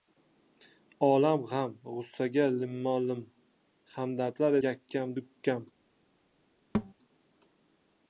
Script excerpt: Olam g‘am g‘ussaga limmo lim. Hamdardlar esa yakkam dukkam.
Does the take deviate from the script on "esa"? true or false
true